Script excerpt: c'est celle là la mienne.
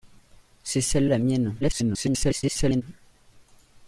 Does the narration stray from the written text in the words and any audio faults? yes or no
yes